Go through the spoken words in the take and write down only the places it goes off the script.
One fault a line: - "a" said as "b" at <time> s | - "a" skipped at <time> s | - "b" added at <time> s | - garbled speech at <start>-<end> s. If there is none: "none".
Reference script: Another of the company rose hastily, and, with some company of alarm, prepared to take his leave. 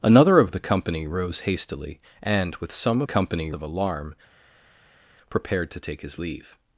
none